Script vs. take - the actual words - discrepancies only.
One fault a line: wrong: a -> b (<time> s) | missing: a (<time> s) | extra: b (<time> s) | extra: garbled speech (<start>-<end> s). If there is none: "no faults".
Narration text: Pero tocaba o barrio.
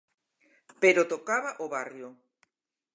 no faults